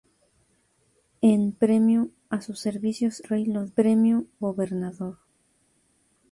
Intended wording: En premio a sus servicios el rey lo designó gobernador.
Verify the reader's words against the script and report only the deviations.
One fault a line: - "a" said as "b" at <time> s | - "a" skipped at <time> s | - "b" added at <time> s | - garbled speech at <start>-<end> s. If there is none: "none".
- "el" skipped at 3.2 s
- "designó" said as "premio" at 3.7 s